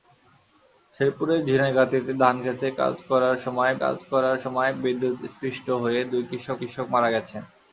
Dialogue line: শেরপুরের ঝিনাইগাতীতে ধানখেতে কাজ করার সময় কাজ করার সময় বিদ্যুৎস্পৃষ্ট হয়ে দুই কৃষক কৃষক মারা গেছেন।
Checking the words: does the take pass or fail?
pass